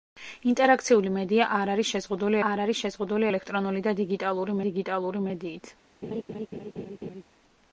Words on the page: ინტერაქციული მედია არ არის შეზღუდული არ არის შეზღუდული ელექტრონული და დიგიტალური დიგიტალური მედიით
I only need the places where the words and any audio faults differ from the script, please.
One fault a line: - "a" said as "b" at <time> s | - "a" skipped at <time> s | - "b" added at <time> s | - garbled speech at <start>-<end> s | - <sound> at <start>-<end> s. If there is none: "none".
- laugh at 6.0-7.2 s